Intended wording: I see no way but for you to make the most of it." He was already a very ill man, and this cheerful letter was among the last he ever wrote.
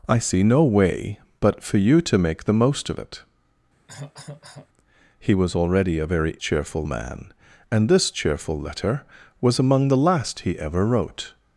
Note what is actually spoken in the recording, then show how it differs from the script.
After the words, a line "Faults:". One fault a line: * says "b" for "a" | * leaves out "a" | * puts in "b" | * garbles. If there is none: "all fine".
I see no way but for you to make the most of it." He was already a very cheerful man, and this cheerful letter was among the last he ever wrote.
Faults:
* says "cheerful" for "ill"